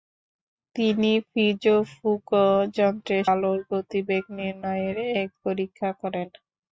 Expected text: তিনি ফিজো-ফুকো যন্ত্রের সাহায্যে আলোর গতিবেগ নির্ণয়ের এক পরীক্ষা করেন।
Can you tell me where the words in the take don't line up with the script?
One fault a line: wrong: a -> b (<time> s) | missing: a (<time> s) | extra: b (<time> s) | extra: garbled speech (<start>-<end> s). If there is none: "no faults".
missing: সাহায্যে (3.2 s)